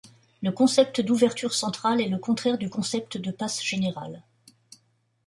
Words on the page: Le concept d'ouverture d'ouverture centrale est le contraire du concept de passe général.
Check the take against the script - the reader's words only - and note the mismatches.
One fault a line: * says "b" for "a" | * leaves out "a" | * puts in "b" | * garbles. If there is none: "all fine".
* leaves out "d'ouverture"